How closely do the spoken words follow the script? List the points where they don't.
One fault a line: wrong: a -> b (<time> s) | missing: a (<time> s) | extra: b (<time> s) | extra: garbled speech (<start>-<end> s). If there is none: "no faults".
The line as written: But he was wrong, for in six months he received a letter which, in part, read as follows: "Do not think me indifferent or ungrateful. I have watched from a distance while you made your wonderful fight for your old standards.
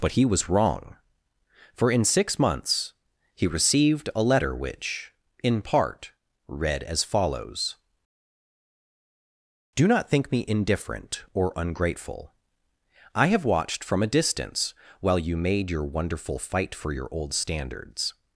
no faults